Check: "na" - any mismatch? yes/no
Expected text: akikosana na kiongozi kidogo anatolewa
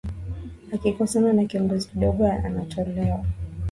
no